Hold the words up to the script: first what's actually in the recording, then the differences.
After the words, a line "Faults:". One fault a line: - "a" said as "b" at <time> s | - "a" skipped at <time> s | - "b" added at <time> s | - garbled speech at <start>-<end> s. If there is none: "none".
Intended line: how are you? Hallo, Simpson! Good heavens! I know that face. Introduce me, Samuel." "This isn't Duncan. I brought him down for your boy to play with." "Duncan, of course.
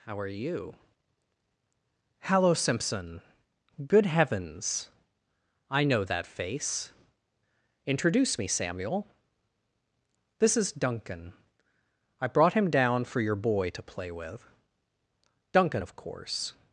how are you? Hallo, Simpson! Good heavens! I know that face. Introduce me, Samuel." "This is Duncan. I brought him down for your boy to play with." "Duncan, of course.
Faults:
- "isn't" said as "is" at 10.5 s